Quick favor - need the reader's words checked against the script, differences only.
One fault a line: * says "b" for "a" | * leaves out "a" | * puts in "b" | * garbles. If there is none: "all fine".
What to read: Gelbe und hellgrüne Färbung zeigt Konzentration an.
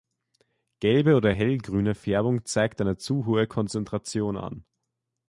* says "oder" for "und"
* puts in "eine zu hohe"